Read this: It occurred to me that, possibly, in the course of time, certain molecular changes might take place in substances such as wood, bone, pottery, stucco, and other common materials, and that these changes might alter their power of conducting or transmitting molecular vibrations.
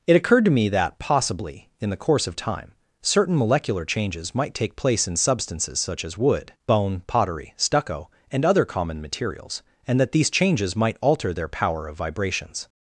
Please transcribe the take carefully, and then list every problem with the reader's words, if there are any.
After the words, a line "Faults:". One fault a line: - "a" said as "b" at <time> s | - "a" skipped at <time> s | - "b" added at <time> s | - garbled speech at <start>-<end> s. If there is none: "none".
It occurred to me that, possibly, in the course of time, certain molecular changes might take place in substances such as wood, bone, pottery, stucco, and other common materials, and that these changes might alter their power of vibrations.
Faults:
- "conducting or transmitting molecular" skipped at 12.0 s